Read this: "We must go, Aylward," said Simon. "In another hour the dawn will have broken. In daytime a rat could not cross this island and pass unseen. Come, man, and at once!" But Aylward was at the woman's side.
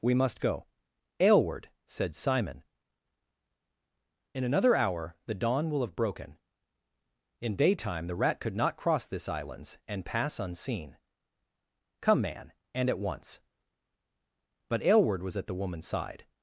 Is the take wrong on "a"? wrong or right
wrong